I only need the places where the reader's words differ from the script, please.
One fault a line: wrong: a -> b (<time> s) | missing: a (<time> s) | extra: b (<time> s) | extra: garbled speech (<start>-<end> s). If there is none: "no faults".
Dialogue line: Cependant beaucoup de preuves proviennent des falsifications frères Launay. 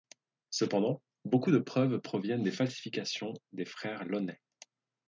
extra: des (3.5 s)